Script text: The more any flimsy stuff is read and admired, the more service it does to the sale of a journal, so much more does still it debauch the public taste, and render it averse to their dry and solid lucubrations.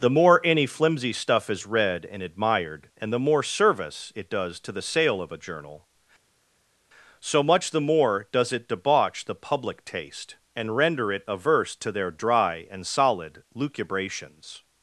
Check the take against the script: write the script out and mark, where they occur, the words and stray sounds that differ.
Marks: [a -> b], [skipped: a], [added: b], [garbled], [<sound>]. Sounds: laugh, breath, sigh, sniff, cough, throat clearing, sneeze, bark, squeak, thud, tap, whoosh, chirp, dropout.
The more any flimsy stuff is read and admired, [added: and] the more service it does to the sale of a journal, so much [added: the] more does [skipped: still] it debauch the public taste, and render it averse to their dry and solid lucubrations.